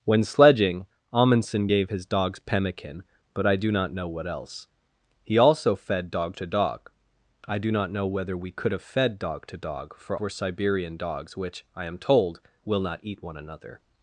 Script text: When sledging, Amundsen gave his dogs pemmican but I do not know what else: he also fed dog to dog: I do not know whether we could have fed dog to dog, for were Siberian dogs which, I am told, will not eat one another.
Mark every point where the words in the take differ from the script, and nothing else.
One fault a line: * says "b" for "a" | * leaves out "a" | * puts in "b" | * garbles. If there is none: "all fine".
all fine